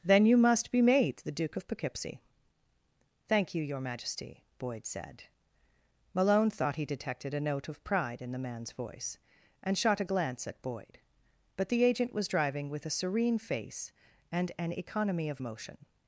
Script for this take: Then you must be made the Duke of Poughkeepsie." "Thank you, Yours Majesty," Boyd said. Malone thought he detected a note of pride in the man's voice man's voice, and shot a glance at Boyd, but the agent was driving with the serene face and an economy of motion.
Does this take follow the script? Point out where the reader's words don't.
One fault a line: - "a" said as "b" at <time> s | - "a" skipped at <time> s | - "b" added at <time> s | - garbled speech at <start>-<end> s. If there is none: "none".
- "Yours" said as "Your" at 3.6 s
- "man's voice" skipped at 9.2 s
- "the" said as "a" at 12.9 s